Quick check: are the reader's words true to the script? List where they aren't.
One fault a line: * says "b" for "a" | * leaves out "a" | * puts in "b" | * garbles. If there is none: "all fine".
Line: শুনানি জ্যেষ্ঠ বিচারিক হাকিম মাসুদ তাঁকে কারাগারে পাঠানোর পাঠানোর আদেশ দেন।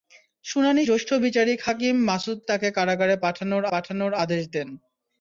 all fine